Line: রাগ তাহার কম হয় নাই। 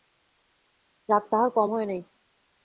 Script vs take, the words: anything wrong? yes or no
no